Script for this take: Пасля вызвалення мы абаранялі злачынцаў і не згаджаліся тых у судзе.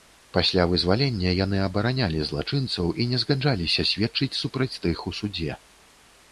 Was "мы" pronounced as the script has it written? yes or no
no